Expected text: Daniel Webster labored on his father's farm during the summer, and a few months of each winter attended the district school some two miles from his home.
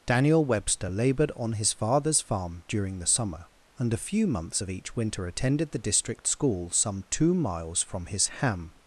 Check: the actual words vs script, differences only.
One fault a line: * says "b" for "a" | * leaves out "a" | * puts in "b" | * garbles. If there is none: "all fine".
* says "ham" for "home"